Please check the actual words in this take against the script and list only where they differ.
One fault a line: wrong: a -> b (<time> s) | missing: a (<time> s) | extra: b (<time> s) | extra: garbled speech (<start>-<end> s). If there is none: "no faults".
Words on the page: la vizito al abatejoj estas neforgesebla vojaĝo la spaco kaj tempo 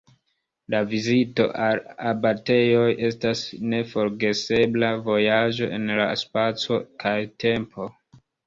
extra: en (5.8 s)